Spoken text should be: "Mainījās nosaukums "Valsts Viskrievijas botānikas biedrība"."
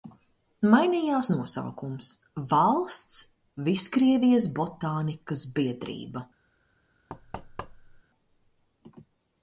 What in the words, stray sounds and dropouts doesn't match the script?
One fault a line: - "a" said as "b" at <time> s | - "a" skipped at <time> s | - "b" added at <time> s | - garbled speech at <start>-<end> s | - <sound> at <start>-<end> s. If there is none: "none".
- thud at 7.1-8.0 s